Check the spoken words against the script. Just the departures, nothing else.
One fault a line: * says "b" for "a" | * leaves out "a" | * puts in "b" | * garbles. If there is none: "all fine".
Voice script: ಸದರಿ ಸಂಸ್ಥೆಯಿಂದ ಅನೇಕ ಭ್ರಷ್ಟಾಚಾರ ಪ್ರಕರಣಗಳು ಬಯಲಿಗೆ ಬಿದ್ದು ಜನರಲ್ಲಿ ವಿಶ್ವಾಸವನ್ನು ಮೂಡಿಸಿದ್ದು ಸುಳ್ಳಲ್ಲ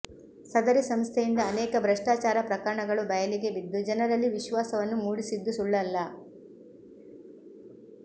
all fine